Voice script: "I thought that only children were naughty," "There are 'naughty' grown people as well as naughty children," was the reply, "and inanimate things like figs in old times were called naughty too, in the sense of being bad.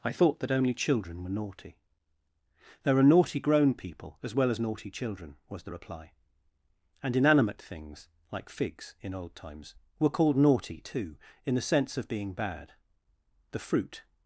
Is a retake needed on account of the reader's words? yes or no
yes